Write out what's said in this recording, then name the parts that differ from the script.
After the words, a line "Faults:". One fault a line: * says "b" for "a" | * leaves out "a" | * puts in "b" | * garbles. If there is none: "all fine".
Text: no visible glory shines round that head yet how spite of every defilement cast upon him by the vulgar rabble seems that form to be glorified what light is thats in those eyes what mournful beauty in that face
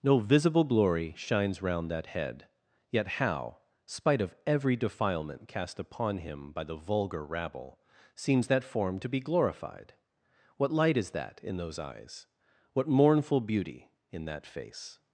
no visible glory shines round that head yet how spite of every defilement cast upon him by the vulgar rabble seems that form to be glorified what light is that in those eyes what mournful beauty in that face
Faults:
* says "that" for "thats"